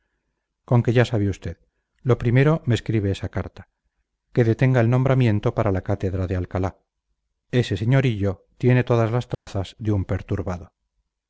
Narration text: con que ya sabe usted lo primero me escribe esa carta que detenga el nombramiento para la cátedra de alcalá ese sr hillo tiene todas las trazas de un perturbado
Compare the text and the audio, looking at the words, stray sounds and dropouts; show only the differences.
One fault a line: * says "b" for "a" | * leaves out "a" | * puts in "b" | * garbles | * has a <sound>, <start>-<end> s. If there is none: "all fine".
* has a dropout, 9.3-9.5 s